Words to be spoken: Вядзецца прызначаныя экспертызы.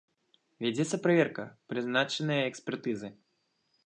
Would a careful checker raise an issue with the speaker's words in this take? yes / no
yes